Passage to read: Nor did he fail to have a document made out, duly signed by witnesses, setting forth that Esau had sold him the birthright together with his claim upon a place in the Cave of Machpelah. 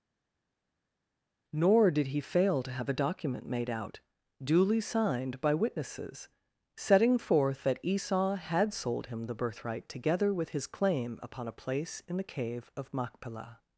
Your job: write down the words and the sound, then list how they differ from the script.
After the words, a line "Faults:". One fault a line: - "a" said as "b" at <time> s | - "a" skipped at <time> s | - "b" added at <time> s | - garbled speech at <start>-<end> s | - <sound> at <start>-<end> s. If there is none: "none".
Nor did he fail to have a document made out, duly signed by witnesses, setting forth that Esau had sold him the birthright together with his claim upon a place in the Cave of Machpelah.
Faults:
none